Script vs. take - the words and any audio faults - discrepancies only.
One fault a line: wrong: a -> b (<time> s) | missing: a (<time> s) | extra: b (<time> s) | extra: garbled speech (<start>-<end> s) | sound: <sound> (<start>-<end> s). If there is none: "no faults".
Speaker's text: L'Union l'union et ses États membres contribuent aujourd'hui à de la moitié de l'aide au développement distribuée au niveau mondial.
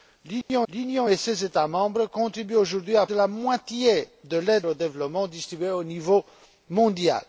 sound: dropout (0.4-0.5 s)